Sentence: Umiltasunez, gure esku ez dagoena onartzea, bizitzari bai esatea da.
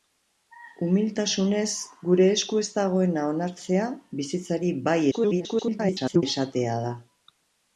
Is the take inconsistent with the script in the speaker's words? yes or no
yes